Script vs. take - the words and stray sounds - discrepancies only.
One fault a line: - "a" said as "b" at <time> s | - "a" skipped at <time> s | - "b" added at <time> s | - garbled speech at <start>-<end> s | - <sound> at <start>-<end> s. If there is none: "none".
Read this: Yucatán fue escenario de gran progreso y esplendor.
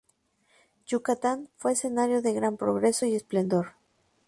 none